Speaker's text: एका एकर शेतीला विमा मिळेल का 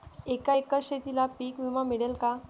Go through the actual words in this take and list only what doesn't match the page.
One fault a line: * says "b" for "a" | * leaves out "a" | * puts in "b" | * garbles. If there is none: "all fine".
* puts in "पीक"